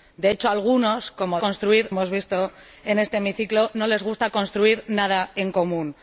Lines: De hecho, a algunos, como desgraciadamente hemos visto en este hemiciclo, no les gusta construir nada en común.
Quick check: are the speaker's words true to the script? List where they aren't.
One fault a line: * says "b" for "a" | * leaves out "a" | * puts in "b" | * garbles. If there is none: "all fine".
* says "construir" for "desgraciadamente"